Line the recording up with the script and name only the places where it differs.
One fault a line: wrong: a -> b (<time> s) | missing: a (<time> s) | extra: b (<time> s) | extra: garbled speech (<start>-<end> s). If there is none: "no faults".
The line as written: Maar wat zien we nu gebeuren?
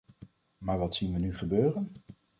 no faults